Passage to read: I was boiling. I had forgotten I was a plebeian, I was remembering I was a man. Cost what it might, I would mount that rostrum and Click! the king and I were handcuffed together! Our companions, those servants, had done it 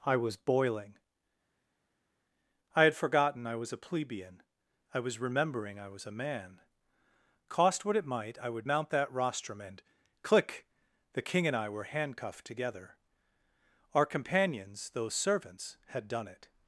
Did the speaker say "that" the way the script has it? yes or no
yes